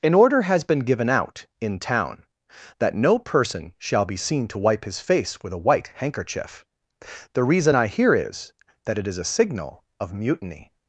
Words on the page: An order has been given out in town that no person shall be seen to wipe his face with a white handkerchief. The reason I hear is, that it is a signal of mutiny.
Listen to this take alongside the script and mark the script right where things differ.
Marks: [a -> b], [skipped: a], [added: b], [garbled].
An order has been given out in town that no person shall be seen to wipe his face with a white handkerchief. The reason I hear is, that it is a signal of mutiny.